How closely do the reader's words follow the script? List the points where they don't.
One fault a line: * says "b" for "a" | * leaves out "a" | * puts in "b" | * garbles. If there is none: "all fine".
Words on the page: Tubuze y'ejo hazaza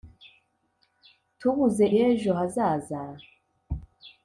all fine